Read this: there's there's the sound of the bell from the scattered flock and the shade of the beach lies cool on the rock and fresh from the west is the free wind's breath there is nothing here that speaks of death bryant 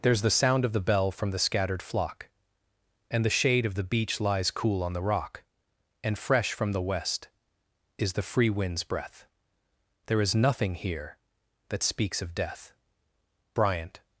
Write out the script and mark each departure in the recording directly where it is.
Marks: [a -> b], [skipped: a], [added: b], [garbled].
there's [skipped: there's] the sound of the bell from the scattered flock and the shade of the beach lies cool on the rock and fresh from the west is the free wind's breath there is nothing here that speaks of death bryant